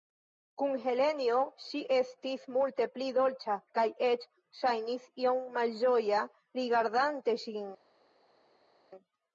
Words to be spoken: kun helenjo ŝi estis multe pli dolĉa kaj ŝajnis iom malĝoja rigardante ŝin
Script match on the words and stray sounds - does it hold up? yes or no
no